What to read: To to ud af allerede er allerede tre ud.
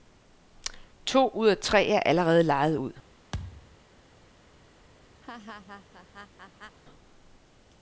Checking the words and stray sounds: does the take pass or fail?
fail